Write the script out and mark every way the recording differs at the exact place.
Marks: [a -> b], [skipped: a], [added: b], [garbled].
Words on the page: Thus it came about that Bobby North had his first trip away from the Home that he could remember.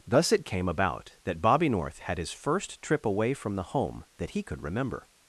Thus it came about that Bobby North had his first trip away from the Home that he could remember.